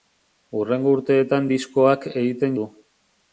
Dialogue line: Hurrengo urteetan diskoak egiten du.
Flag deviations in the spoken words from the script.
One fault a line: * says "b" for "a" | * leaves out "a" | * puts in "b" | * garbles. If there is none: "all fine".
all fine